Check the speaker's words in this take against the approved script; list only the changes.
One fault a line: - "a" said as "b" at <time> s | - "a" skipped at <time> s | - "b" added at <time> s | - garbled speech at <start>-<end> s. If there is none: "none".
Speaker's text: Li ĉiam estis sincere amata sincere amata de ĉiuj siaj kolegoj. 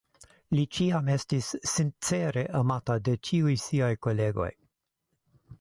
- "sincere amata" skipped at 3.0 s